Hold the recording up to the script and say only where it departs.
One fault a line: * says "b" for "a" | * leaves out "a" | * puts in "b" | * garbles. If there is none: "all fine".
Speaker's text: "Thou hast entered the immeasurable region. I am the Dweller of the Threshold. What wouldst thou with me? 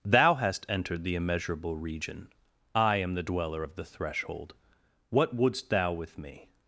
all fine